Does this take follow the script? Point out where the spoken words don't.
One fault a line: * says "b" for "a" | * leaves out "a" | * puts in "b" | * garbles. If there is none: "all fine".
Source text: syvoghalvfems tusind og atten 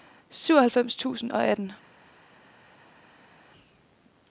all fine